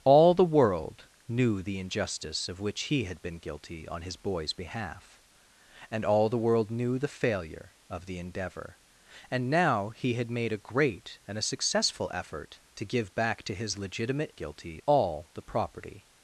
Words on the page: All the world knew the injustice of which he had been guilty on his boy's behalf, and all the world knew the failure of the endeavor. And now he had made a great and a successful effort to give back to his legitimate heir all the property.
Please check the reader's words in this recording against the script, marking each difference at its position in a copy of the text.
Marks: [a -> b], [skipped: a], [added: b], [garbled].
All the world knew the injustice of which he had been guilty on his boy's behalf, and all the world knew the failure of the endeavor. And now he had made a great and a successful effort to give back to his legitimate [heir -> guilty] all the property.